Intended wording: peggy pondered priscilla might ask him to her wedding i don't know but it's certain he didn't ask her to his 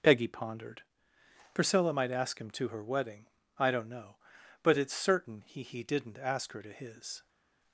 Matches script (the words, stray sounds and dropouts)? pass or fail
fail